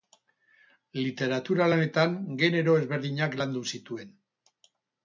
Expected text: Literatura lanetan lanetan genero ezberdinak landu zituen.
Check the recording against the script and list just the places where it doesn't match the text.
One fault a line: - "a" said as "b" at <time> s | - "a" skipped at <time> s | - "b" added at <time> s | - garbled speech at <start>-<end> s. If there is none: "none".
- "lanetan" skipped at 2.1 s